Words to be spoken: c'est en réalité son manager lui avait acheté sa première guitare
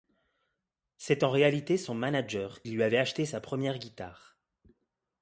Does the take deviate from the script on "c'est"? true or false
false